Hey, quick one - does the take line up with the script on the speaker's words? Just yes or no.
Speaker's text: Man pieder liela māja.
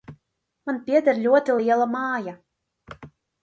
no